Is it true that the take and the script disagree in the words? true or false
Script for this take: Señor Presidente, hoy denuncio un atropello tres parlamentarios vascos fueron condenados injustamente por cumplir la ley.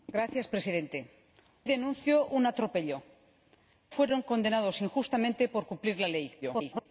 true